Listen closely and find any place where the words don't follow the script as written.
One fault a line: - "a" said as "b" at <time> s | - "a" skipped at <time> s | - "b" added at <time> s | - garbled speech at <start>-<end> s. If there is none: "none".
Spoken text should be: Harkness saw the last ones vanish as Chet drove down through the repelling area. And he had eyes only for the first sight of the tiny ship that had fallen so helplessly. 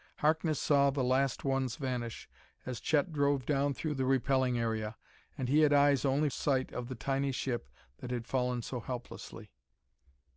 - "for the first" skipped at 6.3 s